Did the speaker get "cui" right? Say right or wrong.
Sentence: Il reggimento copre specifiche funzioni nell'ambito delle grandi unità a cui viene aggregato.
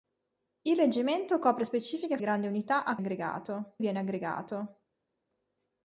wrong